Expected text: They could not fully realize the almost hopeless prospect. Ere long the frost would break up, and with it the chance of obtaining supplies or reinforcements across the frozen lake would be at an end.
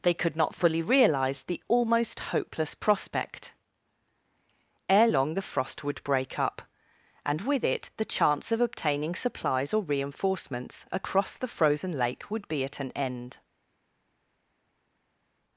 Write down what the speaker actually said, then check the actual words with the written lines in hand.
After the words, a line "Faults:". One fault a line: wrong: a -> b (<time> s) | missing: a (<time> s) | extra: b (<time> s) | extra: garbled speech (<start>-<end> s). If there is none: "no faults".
They could not fully realize the almost hopeless prospect. Ere long the frost would break up, and with it the chance of obtaining supplies or reinforcements across the frozen lake would be at an end.
Faults:
no faults